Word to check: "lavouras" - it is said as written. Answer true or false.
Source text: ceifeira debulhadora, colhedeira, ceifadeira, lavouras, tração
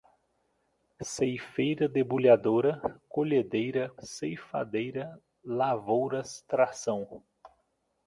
true